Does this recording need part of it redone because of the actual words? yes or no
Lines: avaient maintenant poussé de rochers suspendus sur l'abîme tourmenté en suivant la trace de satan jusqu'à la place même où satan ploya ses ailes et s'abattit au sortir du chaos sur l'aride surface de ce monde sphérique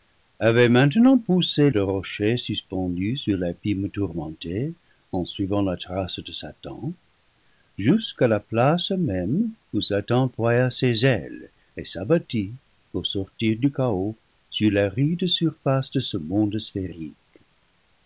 no